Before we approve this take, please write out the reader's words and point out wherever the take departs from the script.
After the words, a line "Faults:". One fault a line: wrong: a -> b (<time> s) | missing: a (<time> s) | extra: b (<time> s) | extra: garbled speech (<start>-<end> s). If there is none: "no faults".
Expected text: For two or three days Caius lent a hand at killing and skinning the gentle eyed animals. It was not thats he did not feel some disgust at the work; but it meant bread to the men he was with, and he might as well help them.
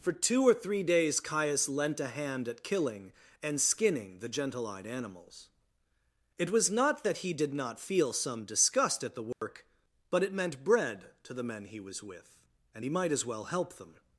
For two or three days Caius lent a hand at killing and skinning the gentle eyed animals. It was not that he did not feel some disgust at the work; but it meant bread to the men he was with, and he might as well help them.
Faults:
wrong: thats -> that (7.0 s)